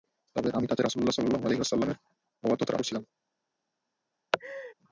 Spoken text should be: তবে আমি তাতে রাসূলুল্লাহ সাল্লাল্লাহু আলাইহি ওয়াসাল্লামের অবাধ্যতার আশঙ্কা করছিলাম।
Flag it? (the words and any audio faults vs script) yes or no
yes